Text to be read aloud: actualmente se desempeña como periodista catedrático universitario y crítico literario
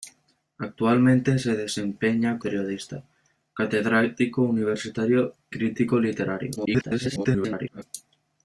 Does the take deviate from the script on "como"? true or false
true